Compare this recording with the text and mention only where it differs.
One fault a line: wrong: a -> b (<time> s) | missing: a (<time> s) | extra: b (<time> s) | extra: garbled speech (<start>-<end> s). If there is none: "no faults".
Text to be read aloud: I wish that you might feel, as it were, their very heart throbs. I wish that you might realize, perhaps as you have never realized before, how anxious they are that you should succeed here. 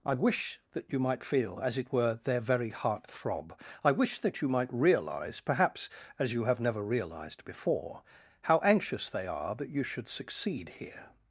wrong: throbs -> throb (3.0 s)